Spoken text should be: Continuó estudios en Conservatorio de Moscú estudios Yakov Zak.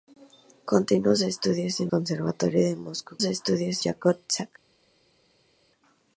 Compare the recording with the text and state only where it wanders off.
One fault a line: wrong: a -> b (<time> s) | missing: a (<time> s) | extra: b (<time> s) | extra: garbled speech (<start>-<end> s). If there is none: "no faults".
no faults